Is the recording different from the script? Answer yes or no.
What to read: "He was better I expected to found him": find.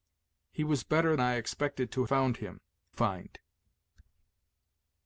no